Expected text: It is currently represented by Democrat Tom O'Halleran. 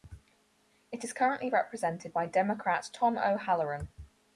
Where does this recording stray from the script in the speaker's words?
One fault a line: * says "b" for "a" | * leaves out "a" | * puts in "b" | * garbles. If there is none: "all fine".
all fine